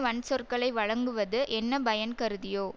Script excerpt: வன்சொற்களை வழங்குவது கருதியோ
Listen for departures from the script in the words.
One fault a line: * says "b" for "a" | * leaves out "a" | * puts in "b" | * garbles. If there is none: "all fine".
* puts in "என்ன பயன்"